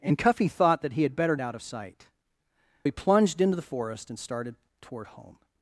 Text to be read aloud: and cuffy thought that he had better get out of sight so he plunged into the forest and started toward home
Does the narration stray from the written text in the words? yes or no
yes